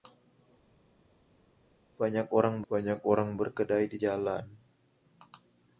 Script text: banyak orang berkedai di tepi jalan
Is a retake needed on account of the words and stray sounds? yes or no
yes